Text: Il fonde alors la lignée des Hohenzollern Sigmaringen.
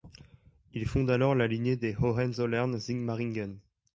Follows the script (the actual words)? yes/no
yes